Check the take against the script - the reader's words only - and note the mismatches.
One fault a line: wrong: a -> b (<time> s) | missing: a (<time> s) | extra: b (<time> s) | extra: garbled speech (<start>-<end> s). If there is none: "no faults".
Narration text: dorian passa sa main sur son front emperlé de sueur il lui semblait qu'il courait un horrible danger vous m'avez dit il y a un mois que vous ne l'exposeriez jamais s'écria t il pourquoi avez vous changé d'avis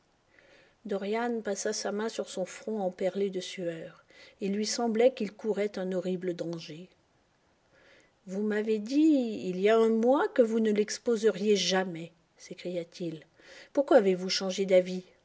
no faults